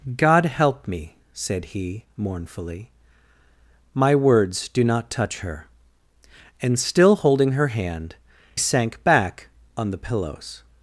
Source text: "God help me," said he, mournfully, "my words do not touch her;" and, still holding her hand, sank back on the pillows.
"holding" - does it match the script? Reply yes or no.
yes